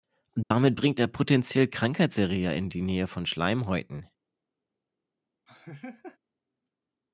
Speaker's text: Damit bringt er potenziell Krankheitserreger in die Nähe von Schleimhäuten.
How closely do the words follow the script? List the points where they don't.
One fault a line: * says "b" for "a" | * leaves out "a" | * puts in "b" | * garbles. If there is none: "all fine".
all fine